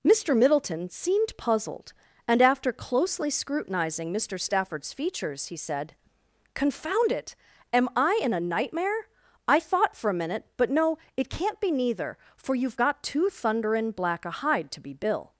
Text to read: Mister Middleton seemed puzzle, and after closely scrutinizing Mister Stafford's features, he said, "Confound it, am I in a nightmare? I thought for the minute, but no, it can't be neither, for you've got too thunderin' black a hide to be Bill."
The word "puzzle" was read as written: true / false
false